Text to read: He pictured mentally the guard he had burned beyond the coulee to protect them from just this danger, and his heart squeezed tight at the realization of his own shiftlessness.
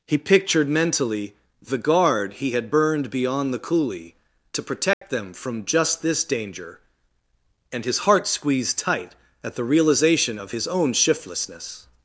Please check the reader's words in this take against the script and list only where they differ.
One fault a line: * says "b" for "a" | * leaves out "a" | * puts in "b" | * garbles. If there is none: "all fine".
all fine